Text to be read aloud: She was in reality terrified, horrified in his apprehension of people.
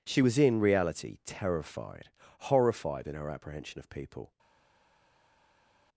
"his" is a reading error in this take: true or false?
true